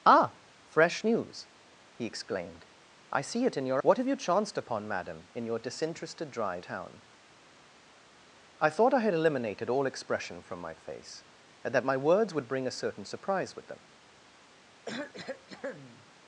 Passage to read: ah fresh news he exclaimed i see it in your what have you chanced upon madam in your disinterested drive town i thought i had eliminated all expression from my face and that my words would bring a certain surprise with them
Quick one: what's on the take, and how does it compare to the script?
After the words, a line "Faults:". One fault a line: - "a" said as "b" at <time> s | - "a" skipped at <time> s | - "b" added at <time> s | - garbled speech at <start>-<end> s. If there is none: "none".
ah fresh news he exclaimed i see it in your what have you chanced upon madam in your disinterested drive town i thought i had eliminated all expression from my face and that my words would bring a certain surprise with them
Faults:
none